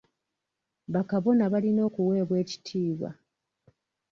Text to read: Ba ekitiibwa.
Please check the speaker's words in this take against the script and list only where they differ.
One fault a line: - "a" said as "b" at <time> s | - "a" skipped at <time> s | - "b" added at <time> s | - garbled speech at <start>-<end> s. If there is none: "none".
- "kabona balina okuweebwa" added at 1.1 s